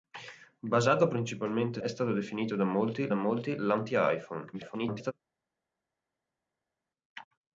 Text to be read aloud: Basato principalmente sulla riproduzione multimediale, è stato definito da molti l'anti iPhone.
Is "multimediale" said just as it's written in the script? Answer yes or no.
no